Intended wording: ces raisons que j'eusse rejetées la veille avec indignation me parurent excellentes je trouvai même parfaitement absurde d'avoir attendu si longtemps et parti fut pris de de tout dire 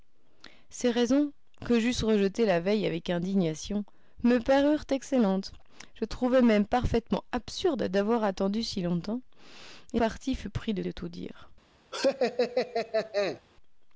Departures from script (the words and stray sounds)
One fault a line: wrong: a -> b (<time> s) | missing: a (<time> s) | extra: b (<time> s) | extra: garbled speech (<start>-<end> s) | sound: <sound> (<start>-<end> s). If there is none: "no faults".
sound: laugh (11.9-13.4 s)